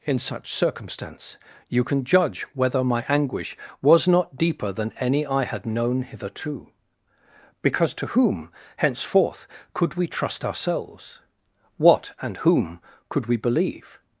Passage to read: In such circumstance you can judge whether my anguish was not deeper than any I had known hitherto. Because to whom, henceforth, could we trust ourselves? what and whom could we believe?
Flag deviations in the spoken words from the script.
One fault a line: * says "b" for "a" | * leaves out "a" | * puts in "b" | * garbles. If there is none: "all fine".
all fine